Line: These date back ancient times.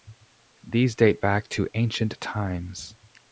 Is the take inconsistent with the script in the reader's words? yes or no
yes